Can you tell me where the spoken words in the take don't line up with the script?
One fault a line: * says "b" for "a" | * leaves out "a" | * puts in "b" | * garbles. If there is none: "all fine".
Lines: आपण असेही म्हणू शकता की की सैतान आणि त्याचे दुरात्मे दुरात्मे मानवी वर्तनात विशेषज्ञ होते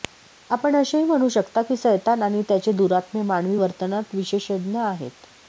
* leaves out "की"
* leaves out "दुरात्मे"
* says "आहेत" for "होते"